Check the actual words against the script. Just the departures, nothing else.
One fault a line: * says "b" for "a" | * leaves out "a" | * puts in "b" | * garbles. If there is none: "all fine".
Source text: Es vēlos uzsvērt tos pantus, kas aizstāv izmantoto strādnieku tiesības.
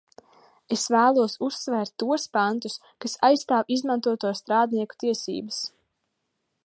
all fine